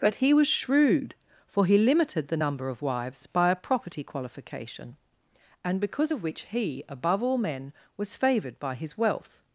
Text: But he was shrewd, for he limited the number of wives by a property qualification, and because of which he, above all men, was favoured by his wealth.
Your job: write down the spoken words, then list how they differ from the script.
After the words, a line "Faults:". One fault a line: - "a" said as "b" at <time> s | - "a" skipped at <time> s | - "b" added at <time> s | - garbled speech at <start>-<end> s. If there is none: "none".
But he was shrewd, for he limited the number of wives by a property qualification, and because of which he, above all men, was favoured by his wealth.
Faults:
none